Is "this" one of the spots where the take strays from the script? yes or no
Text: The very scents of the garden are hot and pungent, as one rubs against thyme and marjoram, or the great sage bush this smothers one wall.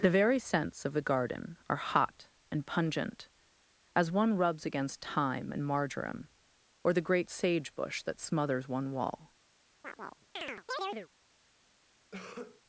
yes